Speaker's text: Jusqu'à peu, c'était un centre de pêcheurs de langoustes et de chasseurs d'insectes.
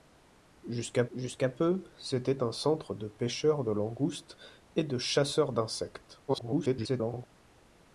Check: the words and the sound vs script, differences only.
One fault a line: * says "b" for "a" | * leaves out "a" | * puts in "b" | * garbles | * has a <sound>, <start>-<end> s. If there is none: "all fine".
* puts in "jusqu'à"
* garbles